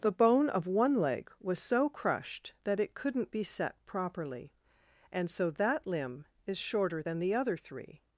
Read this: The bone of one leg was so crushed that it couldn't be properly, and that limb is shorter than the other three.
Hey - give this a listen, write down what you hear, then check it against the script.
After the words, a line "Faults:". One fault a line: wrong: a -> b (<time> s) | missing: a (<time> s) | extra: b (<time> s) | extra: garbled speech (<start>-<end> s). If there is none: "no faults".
The bone of one leg was so crushed that it couldn't be set properly, and so that limb is shorter than the other three.
Faults:
extra: set (3.4 s)
extra: so (5.3 s)